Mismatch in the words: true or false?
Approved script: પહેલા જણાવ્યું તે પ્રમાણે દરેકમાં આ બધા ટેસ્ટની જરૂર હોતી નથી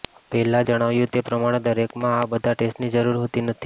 false